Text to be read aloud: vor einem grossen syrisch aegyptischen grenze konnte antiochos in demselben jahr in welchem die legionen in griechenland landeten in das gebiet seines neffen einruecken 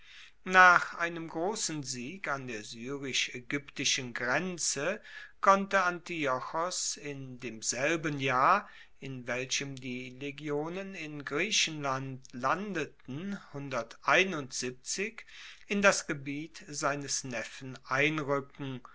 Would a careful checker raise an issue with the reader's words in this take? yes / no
yes